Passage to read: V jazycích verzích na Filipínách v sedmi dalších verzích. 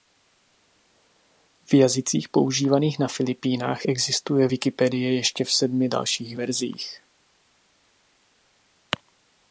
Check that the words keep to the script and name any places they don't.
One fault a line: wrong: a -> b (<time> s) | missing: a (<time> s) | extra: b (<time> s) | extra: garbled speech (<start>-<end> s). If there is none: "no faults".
wrong: verzích -> používaných (2.3 s)
extra: existuje Wikipedie ještě (3.8 s)